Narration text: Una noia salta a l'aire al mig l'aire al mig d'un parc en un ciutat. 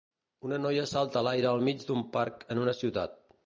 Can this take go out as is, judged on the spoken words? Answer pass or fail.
fail